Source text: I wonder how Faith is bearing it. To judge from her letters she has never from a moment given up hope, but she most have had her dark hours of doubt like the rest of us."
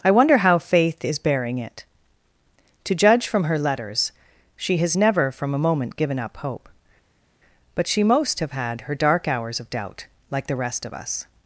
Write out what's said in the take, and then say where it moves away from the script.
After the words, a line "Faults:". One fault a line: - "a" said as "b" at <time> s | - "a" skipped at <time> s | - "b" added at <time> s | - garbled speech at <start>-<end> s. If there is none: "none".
I wonder how Faith is bearing it. To judge from her letters she has never from a moment given up hope, but she most have had her dark hours of doubt like the rest of us."
Faults:
none